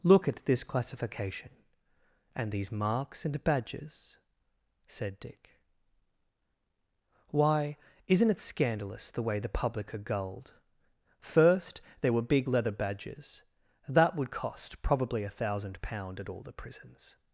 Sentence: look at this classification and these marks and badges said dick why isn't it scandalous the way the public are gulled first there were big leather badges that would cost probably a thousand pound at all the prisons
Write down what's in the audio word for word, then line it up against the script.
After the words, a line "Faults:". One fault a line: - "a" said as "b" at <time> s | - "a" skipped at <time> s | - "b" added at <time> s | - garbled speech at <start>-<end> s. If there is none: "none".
look at this classification and these marks and badges said dick why isn't it scandalous the way the public are gulled first there were big leather badges that would cost probably a thousand pound at all the prisons
Faults:
none